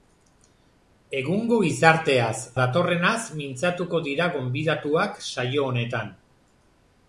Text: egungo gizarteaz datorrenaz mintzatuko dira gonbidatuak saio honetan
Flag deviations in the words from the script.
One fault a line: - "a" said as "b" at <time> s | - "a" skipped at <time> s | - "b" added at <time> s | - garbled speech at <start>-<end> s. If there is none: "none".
none